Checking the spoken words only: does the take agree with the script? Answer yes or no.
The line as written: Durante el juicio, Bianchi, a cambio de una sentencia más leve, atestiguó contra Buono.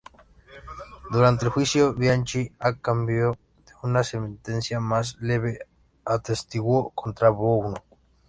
yes